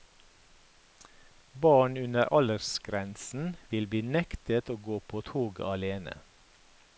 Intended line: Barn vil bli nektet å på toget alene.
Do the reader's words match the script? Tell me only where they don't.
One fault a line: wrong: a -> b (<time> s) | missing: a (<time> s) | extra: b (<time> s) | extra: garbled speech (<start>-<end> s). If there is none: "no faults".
extra: under aldersgrensen (2.0 s)
extra: gå (4.9 s)